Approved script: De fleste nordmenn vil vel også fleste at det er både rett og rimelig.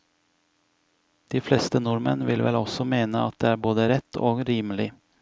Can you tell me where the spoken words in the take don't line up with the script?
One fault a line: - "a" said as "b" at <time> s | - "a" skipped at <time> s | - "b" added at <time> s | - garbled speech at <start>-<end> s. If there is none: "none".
- "fleste" said as "mene" at 3.0 s